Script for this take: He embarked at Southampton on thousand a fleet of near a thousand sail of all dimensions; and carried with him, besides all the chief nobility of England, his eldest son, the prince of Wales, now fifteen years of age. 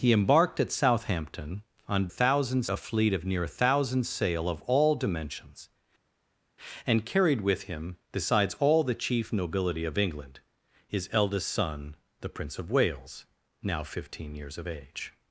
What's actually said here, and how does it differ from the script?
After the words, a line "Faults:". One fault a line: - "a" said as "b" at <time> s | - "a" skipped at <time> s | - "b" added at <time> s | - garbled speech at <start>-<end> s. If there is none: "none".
He embarked at Southampton on thousand a fleet of near a thousand sail of all dimensions; and carried with him, besides all the chief nobility of England, his eldest son, the prince of Wales, now fifteen years of age.
Faults:
none